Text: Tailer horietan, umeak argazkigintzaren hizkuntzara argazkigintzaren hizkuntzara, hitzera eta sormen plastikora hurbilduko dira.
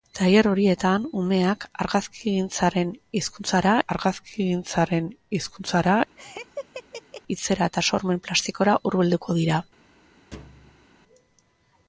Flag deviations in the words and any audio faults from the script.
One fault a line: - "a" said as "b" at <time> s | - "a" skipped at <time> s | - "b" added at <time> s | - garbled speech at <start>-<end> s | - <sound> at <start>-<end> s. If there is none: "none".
- laugh at 6.2-7.2 s
- thud at 10.3-10.9 s